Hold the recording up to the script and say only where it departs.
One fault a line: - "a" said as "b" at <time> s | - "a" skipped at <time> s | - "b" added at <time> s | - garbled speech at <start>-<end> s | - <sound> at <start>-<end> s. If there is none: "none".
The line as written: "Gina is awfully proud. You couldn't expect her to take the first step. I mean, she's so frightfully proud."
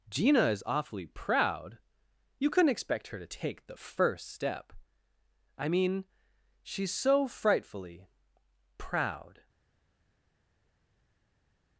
none